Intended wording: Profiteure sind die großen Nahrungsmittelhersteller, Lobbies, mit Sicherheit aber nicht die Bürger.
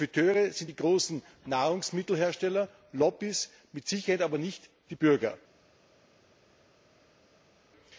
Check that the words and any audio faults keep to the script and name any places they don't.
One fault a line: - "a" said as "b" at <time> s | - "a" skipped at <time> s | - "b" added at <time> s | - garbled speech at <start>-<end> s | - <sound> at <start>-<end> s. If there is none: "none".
none